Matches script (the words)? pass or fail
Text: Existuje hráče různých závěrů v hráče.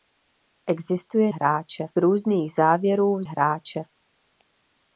pass